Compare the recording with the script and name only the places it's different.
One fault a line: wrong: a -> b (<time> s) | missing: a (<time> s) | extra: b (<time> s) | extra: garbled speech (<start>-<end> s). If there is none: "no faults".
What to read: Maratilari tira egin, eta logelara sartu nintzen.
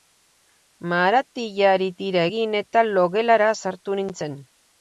no faults